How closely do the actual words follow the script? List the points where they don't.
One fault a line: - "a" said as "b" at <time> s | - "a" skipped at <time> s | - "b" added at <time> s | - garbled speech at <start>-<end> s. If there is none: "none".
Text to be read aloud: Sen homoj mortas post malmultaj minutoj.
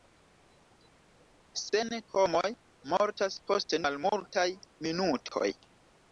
none